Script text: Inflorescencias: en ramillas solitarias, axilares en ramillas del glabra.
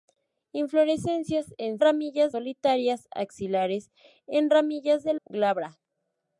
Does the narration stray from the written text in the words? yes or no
no